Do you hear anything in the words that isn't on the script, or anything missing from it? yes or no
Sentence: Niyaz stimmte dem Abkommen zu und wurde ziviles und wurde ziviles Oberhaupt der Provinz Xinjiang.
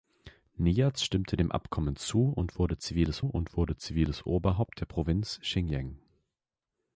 no